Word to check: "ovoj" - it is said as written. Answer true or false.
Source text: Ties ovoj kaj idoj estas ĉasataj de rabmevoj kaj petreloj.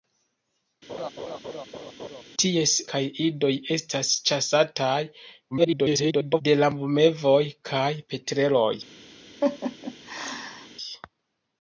false